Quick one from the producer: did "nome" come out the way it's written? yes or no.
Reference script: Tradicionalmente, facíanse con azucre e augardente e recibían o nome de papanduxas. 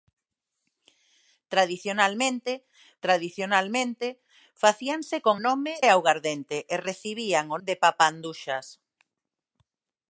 no